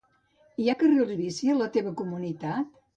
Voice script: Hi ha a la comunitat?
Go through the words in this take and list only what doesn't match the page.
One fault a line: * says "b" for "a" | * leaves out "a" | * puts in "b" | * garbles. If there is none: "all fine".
* puts in "carrils bici"
* puts in "teva"